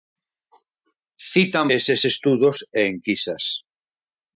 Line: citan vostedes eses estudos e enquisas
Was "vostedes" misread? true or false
true